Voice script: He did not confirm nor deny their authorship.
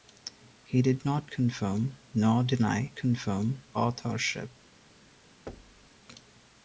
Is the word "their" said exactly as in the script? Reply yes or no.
no